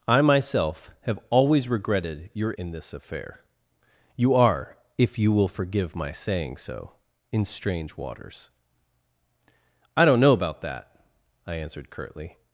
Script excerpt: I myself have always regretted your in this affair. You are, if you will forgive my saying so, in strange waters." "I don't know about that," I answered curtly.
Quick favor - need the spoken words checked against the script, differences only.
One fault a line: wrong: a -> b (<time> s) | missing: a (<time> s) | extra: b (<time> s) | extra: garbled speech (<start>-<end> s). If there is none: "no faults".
no faults